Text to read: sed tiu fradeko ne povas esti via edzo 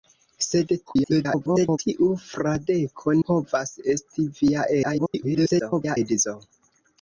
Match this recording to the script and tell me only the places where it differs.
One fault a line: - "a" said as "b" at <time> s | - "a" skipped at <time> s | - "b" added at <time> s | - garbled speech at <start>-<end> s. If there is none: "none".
- garbled speech at 0.9-1.8 s
- "ne" skipped at 3.2 s
- garbled speech at 4.8-6.0 s